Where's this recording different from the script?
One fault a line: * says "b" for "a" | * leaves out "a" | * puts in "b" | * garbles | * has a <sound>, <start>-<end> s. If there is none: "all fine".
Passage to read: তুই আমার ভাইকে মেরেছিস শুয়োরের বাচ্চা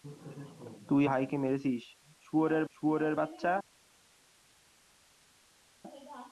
* leaves out "আমার"
* puts in "শুয়োরের"